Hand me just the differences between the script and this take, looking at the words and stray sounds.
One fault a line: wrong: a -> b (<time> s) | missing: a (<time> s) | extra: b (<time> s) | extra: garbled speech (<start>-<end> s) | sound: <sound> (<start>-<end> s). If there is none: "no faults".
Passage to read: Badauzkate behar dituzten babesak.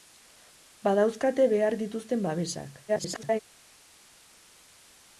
extra: garbled speech (2.9-3.4 s)